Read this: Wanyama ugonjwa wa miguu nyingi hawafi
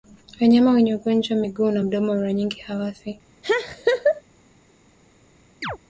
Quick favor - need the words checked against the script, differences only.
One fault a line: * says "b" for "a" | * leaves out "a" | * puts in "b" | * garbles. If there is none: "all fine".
* puts in "wenye"
* puts in "na mdomo mara"